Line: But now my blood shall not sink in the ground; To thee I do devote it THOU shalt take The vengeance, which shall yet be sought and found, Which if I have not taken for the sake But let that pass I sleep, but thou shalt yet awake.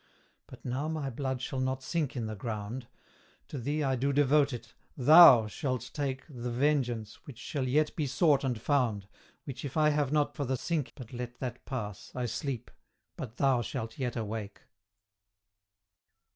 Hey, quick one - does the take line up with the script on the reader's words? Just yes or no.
no